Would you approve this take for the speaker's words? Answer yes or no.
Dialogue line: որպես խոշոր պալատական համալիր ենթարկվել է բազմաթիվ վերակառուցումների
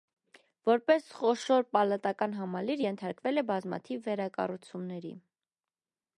yes